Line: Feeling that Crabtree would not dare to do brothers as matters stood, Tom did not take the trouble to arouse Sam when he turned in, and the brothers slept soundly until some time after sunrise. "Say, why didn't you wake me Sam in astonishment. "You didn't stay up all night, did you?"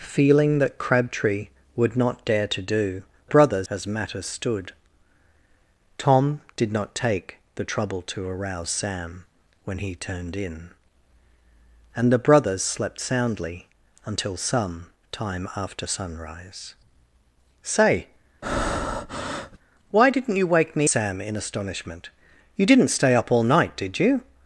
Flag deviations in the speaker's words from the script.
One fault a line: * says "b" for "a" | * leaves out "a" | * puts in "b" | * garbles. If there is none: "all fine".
all fine